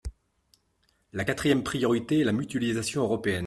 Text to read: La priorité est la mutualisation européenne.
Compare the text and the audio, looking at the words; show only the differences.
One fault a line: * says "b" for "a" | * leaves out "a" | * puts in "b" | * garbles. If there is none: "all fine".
* puts in "quatrième"